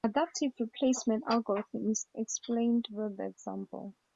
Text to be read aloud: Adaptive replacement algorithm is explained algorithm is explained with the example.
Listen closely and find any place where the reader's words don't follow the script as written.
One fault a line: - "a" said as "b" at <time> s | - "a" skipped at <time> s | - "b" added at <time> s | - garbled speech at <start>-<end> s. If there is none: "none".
- "algorithm is explained" skipped at 2.9 s